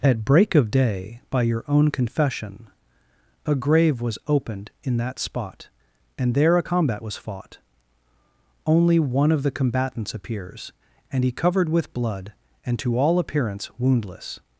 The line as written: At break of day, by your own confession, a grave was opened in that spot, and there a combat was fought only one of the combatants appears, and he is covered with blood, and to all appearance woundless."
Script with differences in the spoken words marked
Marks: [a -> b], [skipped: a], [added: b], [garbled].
At break of day, by your own confession, a grave was opened in that spot, and there a combat was fought only one of the combatants appears, and he [skipped: is] covered with blood, and to all appearance woundless."